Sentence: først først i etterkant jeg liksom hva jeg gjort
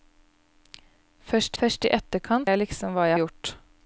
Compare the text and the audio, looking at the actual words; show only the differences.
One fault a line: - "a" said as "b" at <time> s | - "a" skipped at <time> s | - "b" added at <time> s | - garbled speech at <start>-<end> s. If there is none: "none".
none